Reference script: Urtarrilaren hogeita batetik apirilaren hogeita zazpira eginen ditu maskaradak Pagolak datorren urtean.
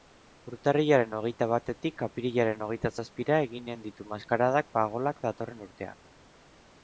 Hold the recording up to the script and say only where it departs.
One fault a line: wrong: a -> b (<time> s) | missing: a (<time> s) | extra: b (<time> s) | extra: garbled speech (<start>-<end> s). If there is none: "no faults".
no faults